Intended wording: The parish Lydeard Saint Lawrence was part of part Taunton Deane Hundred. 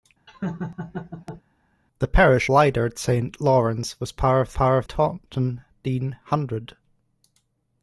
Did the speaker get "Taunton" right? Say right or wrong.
right